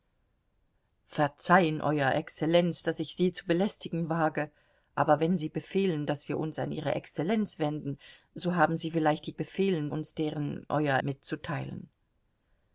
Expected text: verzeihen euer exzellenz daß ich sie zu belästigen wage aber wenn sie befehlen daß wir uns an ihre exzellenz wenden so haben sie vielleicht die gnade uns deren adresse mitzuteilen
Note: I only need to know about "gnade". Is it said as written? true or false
false